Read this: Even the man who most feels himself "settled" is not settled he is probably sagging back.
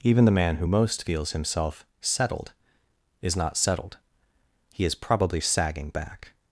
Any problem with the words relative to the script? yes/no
no